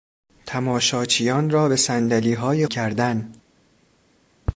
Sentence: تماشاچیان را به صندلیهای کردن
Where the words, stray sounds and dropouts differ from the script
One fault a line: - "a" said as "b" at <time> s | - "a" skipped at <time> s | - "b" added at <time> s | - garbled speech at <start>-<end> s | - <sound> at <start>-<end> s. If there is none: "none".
none